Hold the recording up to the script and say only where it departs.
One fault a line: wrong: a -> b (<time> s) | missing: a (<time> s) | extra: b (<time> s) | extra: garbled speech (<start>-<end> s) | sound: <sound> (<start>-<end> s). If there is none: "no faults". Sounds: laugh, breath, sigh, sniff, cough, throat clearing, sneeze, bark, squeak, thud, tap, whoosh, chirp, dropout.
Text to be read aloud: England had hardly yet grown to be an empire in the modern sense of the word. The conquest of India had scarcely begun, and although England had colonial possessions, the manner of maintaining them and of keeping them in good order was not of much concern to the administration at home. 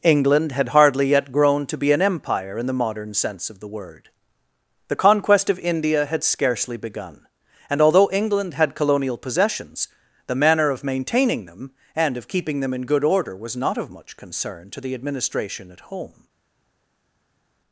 no faults